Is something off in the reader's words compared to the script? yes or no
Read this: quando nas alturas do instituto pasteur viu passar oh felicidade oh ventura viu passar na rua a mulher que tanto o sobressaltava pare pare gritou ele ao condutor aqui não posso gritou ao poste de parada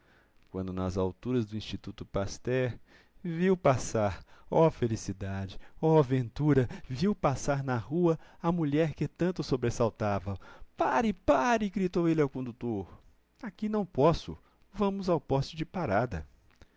yes